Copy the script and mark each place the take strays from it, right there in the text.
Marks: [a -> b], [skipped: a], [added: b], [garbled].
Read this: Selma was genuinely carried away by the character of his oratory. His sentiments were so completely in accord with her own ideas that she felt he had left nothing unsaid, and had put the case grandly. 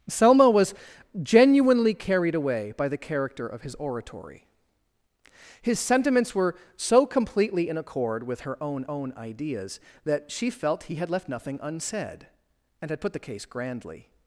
Selma was genuinely carried away by the character of his oratory. His sentiments were so completely in accord with her own [added: own] ideas that she felt he had left nothing unsaid, and had put the case grandly.